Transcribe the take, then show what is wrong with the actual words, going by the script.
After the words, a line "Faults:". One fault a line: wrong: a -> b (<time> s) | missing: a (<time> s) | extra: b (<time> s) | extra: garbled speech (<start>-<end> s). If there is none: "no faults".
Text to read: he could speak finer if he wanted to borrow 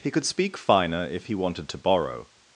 he could speak finer if he wanted to borrow
Faults:
no faults